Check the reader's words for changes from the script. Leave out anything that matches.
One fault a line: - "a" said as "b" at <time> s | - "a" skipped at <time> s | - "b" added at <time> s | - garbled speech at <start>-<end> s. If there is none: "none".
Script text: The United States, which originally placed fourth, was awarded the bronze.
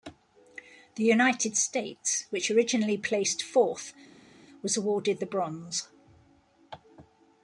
none